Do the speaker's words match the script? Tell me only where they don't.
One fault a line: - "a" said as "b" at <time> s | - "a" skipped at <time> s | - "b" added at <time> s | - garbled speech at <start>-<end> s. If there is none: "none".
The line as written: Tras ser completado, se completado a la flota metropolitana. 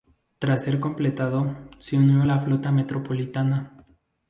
- "completado" said as "unió" at 2.0 s